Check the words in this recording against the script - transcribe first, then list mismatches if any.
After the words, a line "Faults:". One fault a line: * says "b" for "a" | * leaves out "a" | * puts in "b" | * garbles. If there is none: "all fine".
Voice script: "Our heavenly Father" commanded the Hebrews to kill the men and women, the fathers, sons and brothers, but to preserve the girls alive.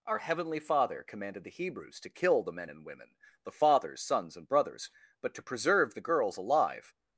"Our heavenly Father" commanded the Hebrews to kill the men and women, the fathers, sons and brothers, but to preserve the girls alive.
Faults:
all fine